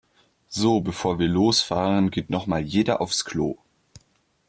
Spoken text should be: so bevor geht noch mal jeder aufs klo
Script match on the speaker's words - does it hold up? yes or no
no